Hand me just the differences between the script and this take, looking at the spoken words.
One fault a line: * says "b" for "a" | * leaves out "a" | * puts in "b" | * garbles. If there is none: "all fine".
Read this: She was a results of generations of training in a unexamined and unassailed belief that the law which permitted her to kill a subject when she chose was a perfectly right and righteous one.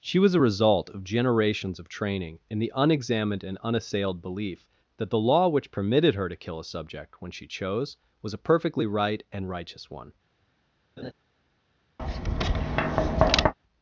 * says "result" for "results"
* says "the" for "a"